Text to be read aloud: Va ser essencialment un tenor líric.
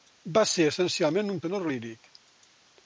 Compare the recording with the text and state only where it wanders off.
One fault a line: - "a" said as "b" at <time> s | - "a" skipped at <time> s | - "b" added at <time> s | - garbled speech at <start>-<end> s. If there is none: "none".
none